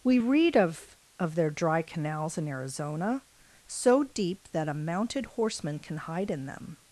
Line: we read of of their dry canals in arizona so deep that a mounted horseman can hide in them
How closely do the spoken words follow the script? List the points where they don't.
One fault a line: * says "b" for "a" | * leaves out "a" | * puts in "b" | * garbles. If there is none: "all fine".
all fine